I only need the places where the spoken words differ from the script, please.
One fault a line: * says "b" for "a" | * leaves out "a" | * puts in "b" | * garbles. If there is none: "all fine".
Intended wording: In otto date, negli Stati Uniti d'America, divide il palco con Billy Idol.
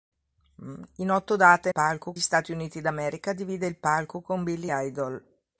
* says "palco" for "negli"